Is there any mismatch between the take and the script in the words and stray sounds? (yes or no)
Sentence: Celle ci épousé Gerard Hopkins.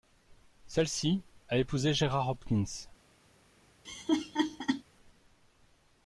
yes